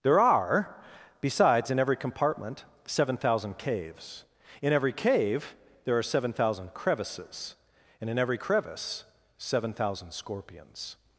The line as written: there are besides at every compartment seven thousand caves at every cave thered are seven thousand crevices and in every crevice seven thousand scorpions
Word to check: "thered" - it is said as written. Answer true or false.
false